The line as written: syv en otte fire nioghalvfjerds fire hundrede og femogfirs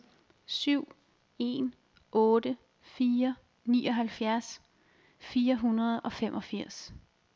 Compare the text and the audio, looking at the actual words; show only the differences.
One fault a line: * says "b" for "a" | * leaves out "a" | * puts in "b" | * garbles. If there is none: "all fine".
all fine